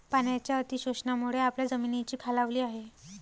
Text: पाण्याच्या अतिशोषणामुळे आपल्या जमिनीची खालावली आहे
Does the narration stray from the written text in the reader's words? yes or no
no